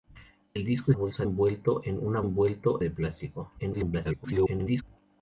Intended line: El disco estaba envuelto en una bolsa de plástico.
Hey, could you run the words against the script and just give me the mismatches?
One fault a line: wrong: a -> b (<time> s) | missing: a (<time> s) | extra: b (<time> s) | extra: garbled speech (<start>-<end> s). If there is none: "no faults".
wrong: estaba -> bolsa (0.9 s)
wrong: bolsa -> envuelto (2.2 s)
extra: garbled speech (3.6-4.8 s)